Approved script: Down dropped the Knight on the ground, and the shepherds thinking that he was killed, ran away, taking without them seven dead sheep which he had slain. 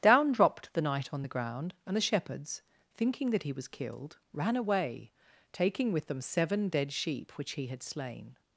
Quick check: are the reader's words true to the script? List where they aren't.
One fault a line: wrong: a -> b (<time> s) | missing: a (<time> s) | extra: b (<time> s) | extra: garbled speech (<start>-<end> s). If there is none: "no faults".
wrong: without -> with (5.9 s)